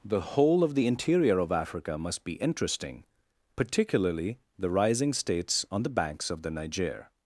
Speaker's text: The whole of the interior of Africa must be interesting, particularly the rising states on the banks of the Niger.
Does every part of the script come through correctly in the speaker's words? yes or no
yes